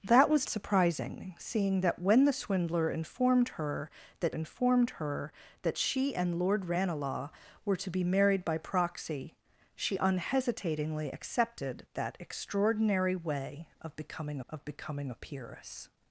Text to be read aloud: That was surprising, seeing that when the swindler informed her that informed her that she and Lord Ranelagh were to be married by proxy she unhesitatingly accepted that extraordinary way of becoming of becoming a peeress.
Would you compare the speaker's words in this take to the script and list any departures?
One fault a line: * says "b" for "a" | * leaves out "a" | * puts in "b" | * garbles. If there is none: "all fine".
all fine